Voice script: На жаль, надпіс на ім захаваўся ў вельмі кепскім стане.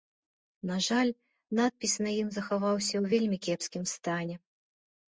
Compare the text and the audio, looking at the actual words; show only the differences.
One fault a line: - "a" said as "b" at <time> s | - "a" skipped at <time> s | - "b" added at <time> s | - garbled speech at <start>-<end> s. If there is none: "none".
none